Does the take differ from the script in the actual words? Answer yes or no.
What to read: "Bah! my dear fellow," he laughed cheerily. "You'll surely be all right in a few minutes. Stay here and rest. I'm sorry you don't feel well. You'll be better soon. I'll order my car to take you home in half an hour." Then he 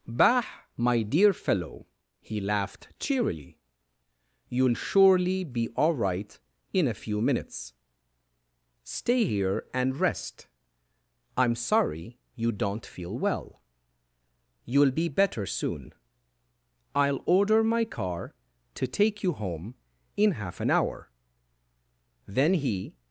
no